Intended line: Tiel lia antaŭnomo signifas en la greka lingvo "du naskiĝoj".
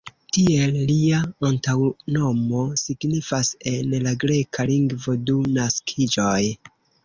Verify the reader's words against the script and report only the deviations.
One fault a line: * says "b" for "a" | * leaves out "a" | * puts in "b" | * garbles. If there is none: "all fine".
all fine